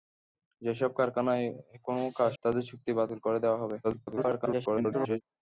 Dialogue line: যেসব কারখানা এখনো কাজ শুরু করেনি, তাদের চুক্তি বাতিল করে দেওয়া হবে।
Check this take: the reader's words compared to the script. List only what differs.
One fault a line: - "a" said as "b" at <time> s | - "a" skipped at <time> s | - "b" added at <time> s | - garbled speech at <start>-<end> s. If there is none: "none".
- "শুরু করেনি" skipped at 2.3 s
- garbled speech at 3.8-5.2 s